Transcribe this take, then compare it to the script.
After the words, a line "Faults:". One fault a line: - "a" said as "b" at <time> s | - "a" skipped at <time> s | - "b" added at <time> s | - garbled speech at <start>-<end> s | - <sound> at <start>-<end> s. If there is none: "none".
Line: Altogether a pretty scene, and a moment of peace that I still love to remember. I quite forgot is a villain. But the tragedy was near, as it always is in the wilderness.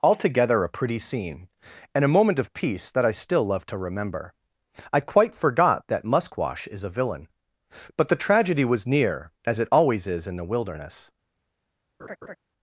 Altogether a pretty scene, and a moment of peace that I still love to remember. I quite forgot that Musquash is a villain. But the tragedy was near, as it always is in the wilderness.
Faults:
- "that Musquash" added at 5.9 s
- laugh at 12.0-12.4 s